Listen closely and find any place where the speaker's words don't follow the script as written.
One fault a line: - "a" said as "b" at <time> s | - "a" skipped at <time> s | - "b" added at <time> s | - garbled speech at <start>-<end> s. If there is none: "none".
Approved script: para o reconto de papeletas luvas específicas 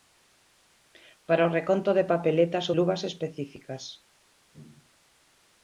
none